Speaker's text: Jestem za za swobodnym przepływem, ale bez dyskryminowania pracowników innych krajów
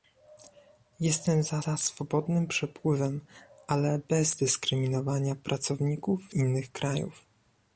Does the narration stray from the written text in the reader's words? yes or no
no